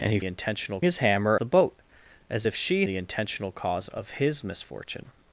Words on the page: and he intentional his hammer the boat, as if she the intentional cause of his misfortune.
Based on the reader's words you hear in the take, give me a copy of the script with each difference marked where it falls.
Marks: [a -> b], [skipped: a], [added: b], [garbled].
and he intentional his hammer the boat, as if she the intentional cause of his misfortune.